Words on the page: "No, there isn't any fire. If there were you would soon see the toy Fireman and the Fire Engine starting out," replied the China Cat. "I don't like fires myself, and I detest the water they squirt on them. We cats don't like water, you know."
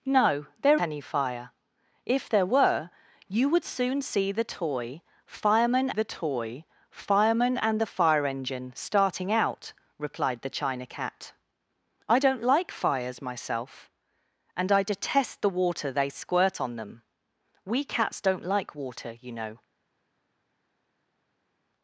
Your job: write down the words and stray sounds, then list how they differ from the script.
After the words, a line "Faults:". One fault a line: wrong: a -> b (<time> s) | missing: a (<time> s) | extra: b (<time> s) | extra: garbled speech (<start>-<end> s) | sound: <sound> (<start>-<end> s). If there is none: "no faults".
"No, there any fire. If there were you would soon see the toy Fireman the toy Fireman and the Fire Engine starting out," replied the China Cat. "I don't like fires myself, and I detest the water they squirt on them. We cats don't like water, you know."
Faults:
missing: isn't (0.8 s)
extra: the toy Fireman (5.9 s)